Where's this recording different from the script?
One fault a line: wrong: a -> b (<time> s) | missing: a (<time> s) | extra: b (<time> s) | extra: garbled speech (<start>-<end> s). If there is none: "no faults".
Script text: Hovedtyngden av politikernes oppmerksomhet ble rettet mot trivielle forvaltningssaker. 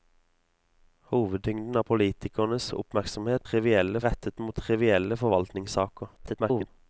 wrong: ble -> trivielle (3.5 s)
extra: garbled speech (6.2-6.7 s)